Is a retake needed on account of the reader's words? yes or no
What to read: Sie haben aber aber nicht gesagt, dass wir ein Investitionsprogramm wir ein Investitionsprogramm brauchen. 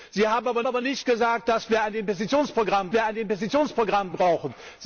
no